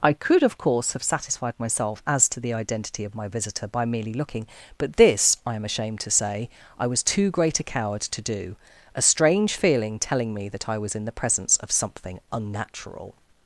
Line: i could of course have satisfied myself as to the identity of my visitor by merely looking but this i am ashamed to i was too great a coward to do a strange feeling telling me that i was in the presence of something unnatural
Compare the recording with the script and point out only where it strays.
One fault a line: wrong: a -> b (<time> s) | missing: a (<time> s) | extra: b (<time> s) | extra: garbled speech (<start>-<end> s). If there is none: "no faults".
extra: say (6.1 s)